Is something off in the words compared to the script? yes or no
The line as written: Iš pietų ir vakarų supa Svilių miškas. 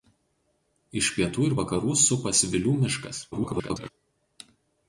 yes